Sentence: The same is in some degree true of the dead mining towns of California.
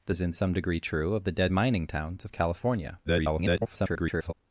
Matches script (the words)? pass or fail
fail